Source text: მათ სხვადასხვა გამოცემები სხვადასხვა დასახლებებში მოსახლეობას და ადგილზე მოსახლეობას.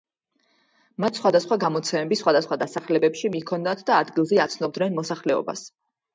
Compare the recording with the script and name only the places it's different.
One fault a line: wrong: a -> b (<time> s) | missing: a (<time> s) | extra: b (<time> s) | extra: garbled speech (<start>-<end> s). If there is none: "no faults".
wrong: მოსახლეობას -> მიჰქონდათ (3.4 s)
extra: აცნობდნენ (4.5 s)